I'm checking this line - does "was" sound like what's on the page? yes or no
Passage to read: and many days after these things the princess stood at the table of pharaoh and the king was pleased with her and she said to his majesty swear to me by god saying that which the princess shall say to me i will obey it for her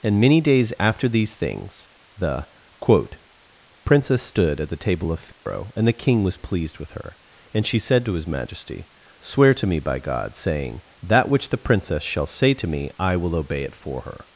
yes